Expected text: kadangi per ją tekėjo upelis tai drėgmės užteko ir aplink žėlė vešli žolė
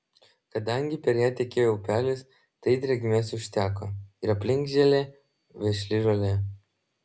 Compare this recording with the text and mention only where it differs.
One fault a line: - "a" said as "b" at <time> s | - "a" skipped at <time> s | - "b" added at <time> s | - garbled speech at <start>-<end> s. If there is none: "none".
none